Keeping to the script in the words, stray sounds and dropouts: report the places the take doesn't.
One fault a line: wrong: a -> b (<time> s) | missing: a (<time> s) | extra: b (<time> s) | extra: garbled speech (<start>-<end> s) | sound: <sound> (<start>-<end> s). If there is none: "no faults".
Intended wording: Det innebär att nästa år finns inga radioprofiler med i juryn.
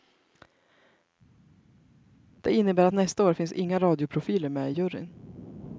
no faults